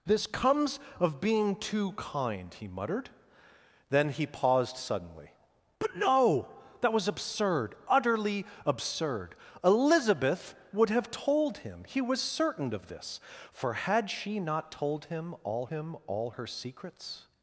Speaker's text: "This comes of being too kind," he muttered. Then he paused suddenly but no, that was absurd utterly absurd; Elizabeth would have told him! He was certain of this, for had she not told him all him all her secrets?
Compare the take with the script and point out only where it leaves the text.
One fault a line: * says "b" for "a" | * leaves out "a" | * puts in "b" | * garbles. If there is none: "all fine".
all fine